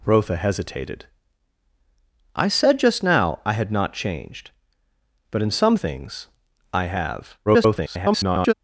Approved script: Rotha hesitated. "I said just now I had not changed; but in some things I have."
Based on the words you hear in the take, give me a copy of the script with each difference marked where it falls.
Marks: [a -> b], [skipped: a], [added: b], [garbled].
Rotha hesitated. "I said just now I had not changed; but in some things I have." [garbled]